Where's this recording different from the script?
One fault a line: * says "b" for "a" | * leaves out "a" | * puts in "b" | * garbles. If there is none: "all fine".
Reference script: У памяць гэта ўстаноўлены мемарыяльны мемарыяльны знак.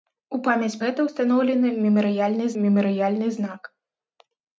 all fine